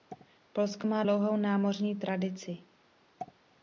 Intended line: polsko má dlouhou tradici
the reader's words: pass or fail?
fail